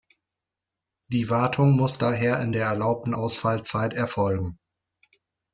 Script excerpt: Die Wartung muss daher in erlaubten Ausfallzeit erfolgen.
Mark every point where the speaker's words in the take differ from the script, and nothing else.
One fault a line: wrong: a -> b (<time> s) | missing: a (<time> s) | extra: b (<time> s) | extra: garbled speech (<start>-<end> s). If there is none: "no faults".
extra: der (2.5 s)